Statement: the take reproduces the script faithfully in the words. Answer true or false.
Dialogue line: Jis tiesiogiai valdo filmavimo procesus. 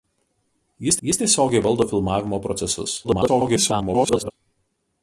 false